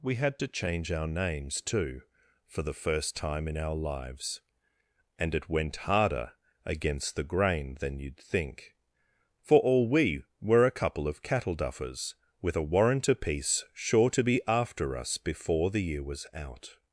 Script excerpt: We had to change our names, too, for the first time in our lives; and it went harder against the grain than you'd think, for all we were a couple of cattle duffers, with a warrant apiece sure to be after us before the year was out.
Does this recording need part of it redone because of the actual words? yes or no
no